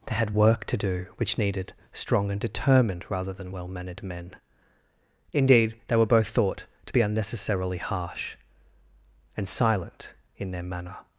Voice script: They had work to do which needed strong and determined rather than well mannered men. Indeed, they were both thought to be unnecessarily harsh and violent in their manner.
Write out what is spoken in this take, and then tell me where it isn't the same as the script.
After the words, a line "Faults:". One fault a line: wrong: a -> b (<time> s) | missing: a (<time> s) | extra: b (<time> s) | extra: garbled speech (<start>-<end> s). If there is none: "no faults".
They had work to do which needed strong and determined rather than well mannered men. Indeed, they were both thought to be unnecessarily harsh and silent in their manner.
Faults:
wrong: violent -> silent (9.5 s)